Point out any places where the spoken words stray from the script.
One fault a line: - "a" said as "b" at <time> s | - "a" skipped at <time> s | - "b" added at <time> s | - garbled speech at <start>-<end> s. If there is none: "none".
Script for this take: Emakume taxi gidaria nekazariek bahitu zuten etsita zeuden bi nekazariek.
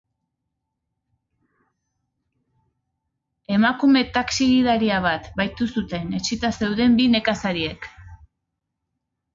- "nekazariek" said as "bat" at 5.1 s